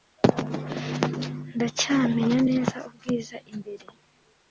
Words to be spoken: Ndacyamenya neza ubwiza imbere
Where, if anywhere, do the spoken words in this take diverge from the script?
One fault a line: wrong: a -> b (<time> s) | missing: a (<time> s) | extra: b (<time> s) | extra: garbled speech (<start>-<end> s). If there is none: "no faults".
no faults